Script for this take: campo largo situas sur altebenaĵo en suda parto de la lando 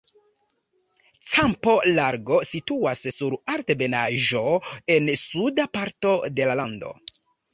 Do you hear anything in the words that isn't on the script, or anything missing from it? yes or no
no